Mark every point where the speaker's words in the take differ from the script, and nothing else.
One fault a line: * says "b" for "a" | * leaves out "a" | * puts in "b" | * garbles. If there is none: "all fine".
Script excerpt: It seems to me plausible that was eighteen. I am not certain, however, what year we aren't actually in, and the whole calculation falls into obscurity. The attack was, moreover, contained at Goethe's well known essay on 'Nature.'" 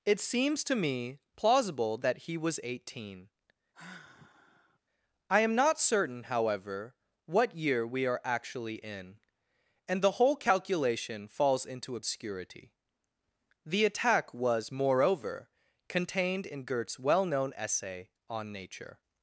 * puts in "he"
* says "are" for "aren't"
* says "in" for "at"